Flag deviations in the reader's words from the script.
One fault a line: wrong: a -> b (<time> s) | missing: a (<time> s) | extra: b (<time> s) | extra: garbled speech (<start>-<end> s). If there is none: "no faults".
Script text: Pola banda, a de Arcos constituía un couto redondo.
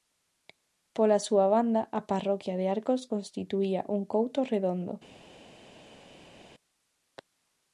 extra: súa (1.3 s)
extra: parroquia (2.1 s)